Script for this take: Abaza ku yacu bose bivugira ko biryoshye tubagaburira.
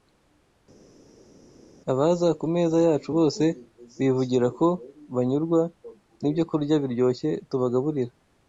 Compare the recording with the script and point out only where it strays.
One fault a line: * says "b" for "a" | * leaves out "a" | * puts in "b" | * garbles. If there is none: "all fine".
* puts in "meza"
* puts in "banyurwa n'ibyokurya"